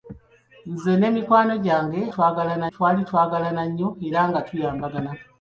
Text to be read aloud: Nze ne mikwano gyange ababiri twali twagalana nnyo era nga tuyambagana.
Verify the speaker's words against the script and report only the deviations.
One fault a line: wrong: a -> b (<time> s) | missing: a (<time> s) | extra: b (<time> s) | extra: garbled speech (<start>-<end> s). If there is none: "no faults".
wrong: ababiri -> twagalana (2.1 s)